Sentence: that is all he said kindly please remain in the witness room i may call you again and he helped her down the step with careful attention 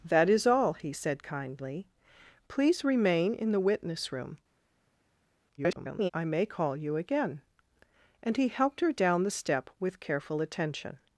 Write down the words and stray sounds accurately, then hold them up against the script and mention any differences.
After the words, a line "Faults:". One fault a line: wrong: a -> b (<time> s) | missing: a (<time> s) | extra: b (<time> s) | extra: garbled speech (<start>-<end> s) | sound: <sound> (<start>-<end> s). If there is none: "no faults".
that is all he said kindly please remain in the witness room [garbled] i may call you again and he helped her down the step with careful attention
Faults:
extra: garbled speech (5.6-6.1 s)